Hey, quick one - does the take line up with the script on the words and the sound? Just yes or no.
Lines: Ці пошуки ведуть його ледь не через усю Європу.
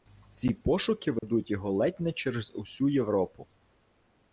no